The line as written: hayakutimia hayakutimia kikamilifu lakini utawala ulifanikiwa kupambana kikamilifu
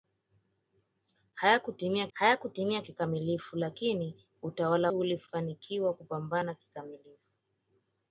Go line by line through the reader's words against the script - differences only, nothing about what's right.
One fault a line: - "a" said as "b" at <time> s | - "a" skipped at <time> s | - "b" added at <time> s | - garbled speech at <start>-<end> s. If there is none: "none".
none